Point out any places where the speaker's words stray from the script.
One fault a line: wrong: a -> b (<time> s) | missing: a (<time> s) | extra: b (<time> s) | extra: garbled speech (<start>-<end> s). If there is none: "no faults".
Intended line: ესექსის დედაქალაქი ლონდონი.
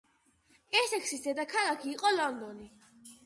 extra: იყო (1.9 s)